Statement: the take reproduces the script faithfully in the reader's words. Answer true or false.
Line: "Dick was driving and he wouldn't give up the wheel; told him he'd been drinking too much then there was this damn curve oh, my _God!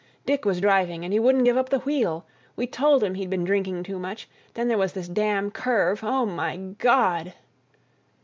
false